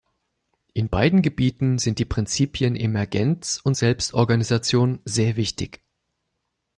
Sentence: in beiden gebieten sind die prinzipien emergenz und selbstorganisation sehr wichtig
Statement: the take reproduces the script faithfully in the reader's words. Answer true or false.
true